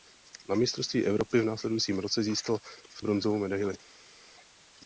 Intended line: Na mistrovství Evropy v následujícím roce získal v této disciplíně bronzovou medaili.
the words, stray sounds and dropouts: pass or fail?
fail